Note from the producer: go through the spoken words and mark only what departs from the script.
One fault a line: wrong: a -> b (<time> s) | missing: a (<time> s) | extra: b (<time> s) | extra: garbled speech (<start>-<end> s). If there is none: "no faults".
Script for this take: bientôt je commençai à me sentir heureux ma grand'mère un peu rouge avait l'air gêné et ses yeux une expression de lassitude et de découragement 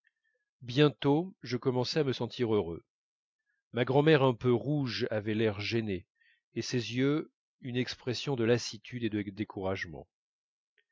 no faults